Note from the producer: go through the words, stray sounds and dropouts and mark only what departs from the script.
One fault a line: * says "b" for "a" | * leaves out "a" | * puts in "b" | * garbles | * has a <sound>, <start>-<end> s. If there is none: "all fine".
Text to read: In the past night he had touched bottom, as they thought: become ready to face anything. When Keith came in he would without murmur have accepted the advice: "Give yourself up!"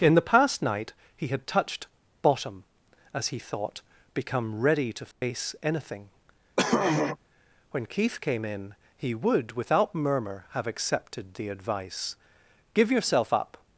* says "he" for "they"
* has a dropout, 5.1-5.2 s
* has a throat clearing, 6.6-7.2 s